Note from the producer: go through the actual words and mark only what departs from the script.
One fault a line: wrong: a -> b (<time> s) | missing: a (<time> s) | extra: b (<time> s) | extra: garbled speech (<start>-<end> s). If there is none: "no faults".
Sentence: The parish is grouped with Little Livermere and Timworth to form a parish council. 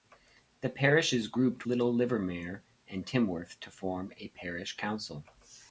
missing: with (1.7 s)